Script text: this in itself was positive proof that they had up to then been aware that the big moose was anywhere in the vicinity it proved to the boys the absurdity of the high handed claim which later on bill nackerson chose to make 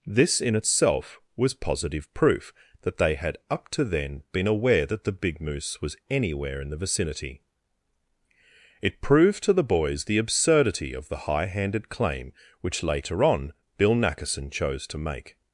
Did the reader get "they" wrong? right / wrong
right